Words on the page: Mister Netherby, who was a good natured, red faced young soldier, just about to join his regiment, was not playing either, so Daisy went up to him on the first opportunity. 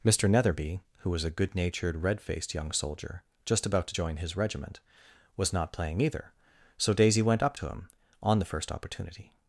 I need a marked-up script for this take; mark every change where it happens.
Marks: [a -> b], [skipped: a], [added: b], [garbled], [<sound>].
Mister Netherby, who was a good natured, red faced young soldier, just about to join his regiment, was not playing either, so Daisy went up to him on the first opportunity.